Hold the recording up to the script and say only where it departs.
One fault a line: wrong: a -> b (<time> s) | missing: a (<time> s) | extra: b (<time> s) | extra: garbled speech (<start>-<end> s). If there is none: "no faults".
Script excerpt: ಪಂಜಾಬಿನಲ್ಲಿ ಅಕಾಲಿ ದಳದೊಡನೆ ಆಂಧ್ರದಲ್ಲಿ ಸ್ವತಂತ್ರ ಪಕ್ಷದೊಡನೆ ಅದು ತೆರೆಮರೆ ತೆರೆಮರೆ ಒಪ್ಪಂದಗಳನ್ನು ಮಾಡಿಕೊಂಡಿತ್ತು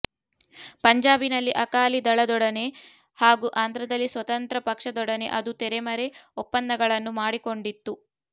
extra: ಹಾಗೂ (3.2 s)
missing: ತೆರೆಮರೆ (6.1 s)